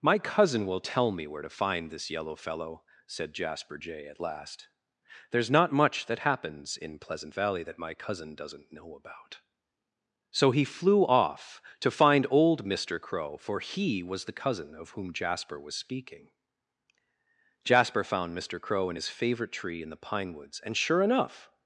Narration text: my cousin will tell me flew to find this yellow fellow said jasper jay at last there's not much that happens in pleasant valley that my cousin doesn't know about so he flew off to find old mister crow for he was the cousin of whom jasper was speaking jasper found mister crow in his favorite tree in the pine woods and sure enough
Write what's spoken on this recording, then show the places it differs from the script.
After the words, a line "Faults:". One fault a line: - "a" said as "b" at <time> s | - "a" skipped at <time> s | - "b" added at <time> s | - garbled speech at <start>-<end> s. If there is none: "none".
my cousin will tell me where to find this yellow fellow said jasper jay at last there's not much that happens in pleasant valley that my cousin doesn't know about so he flew off to find old mister crow for he was the cousin of whom jasper was speaking jasper found mister crow in his favorite tree in the pine woods and sure enough
Faults:
- "flew" said as "where" at 1.3 s